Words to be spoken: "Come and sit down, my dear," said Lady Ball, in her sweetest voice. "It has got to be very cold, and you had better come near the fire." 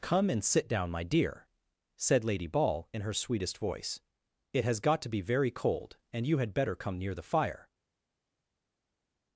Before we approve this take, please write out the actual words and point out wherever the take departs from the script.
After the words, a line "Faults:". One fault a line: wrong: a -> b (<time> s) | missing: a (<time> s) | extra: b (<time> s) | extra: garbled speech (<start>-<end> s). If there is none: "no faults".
"Come and sit down, my dear," said Lady Ball, in her sweetest voice. "It has got to be very cold, and you had better come near the fire."
Faults:
no faults